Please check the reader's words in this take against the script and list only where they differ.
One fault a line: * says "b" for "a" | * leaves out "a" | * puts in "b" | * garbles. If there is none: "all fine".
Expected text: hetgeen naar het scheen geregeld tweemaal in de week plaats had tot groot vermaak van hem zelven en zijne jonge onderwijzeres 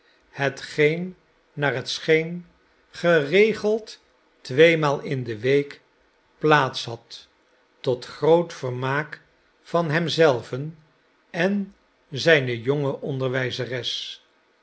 all fine